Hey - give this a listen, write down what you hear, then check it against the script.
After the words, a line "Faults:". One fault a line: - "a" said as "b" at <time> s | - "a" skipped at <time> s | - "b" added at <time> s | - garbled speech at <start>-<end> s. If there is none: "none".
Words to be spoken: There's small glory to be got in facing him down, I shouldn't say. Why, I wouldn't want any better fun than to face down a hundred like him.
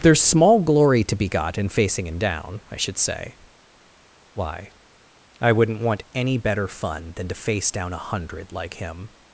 There's small glory to be got in facing him down, I should say. Why, I wouldn't want any better fun than to face down a hundred like him.
Faults:
- "shouldn't" said as "should" at 2.8 s